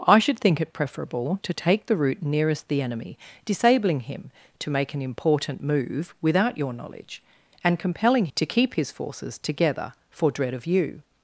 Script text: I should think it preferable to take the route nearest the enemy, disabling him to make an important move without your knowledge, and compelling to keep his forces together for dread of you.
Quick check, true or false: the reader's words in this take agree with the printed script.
true